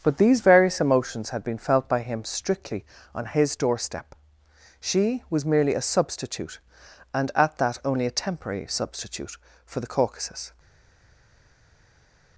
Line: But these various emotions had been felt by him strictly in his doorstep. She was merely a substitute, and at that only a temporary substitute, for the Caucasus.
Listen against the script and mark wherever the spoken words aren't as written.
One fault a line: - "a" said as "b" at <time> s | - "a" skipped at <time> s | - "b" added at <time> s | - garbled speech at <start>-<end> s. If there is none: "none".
- "in" said as "on" at 3.1 s